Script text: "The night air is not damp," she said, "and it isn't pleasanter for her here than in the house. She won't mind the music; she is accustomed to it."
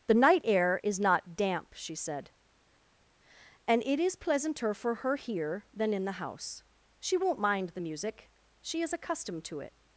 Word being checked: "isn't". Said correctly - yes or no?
no